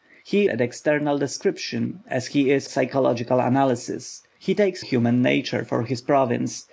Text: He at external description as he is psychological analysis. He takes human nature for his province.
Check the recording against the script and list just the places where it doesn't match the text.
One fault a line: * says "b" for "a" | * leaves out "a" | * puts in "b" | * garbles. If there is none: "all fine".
all fine